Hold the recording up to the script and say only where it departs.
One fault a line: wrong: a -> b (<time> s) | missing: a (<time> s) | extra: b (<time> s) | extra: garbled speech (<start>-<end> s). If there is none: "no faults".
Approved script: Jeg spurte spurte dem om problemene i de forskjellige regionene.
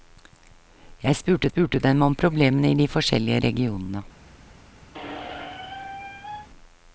no faults